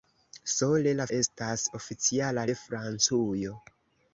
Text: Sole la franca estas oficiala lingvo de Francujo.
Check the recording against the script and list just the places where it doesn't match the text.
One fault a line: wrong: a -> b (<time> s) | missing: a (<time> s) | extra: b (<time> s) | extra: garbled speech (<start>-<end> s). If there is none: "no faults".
missing: franca (1.1 s)
missing: lingvo (2.4 s)